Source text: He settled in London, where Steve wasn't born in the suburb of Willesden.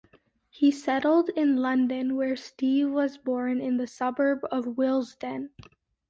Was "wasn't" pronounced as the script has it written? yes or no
no